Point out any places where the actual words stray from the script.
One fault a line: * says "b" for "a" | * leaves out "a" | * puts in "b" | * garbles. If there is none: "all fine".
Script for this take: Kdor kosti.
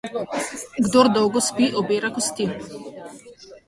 * puts in "dolgo spi obira"